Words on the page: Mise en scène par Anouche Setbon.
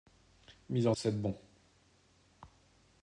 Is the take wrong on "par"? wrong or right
wrong